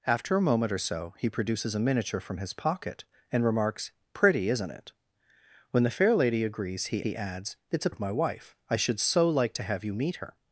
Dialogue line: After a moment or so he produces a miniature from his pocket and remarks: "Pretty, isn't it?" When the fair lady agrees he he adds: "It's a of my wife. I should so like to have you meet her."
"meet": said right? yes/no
yes